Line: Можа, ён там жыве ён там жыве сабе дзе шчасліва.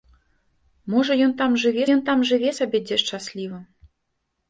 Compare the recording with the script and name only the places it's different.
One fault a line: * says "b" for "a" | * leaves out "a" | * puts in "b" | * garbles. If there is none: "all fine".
all fine